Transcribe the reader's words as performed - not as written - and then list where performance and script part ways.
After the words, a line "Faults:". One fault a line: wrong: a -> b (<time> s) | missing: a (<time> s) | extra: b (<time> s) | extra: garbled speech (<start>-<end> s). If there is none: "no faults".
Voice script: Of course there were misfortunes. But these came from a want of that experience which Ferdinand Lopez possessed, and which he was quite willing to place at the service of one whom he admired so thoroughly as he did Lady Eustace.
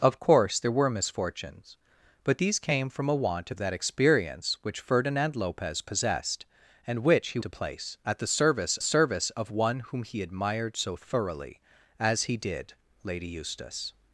Of course there were misfortunes. But these came from a want of that experience which Ferdinand Lopez possessed, and which he to place at the service service of one whom he admired so thoroughly as he did Lady Eustace.
Faults:
missing: was quite willing (7.4 s)
extra: service (8.8 s)